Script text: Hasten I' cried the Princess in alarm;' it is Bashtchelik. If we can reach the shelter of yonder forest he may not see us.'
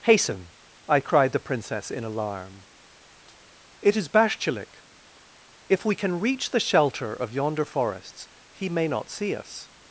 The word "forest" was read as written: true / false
false